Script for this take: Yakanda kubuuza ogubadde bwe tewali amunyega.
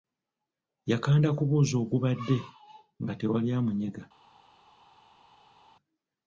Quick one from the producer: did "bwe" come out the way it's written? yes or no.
no